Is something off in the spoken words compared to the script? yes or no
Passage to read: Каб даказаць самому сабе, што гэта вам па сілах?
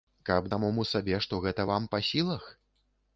yes